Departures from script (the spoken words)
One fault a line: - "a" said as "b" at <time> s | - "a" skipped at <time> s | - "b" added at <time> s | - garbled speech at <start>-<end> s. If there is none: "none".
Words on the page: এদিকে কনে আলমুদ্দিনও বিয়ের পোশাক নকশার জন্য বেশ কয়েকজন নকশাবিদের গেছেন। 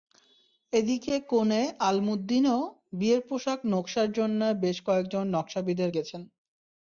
none